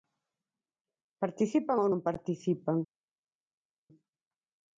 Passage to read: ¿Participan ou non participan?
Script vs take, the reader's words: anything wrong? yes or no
no